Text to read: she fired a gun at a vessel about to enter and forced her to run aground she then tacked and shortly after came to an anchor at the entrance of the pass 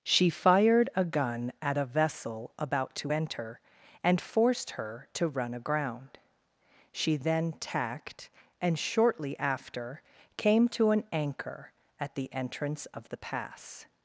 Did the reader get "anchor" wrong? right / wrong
right